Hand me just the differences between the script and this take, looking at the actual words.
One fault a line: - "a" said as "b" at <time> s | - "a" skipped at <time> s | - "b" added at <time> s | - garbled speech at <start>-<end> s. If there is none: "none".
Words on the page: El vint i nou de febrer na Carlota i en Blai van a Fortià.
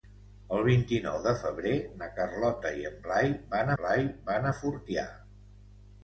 - "Blai van" added at 3.8 s